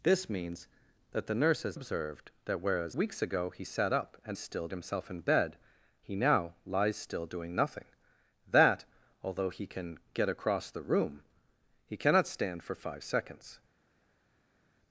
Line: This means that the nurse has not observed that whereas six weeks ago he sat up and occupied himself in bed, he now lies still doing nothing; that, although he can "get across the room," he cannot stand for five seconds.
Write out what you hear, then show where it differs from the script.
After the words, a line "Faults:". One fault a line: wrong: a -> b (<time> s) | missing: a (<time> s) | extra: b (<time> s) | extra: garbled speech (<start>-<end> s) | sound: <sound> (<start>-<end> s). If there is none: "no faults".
This means that the nurse has observed that whereas weeks ago he sat up and still himself in bed, he now lies still doing nothing; that, although he can "get across the room," he cannot stand for five seconds.
Faults:
missing: not (1.8 s)
missing: six (2.9 s)
wrong: occupied -> still (4.4 s)